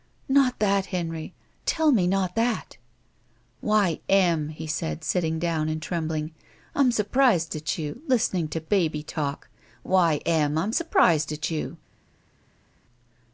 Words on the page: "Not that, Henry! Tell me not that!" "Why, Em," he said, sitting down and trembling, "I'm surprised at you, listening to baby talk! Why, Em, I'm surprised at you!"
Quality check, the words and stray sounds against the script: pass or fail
pass